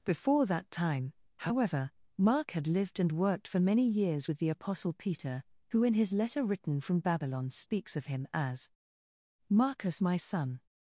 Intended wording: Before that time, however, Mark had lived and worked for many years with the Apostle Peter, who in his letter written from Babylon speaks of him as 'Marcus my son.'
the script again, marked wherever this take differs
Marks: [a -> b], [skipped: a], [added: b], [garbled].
Before that time, however, Mark had lived and worked for many years with the Apostle Peter, who in his letter written from Babylon speaks of him as 'Marcus my son.'